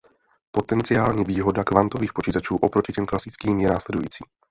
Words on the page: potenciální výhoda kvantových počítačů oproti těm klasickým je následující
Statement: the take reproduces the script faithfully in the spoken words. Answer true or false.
true